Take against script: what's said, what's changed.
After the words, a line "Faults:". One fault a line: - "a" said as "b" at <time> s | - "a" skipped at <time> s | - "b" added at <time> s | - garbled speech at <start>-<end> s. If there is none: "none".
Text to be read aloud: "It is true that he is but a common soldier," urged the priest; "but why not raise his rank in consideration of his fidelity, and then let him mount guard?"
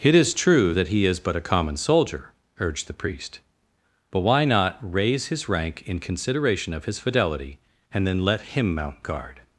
"It is true that he is but a common soldier," urged the priest; "but why not raise his rank in consideration of his fidelity, and then let him mount guard?"
Faults:
none